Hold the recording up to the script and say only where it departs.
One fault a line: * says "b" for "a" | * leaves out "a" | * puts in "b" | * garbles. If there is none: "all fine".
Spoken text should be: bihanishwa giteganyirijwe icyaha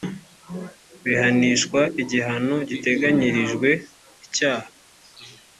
* puts in "igihano"